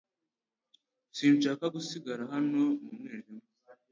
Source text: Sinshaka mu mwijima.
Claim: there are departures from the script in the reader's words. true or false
true